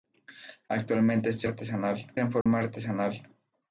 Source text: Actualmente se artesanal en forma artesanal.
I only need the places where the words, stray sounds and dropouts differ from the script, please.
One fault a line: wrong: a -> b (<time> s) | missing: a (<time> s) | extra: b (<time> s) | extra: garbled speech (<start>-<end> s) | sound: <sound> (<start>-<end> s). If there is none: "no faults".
sound: dropout (2.4-2.5 s)